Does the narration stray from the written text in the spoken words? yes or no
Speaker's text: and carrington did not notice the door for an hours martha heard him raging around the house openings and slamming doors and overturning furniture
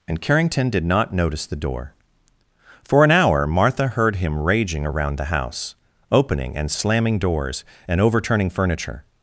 yes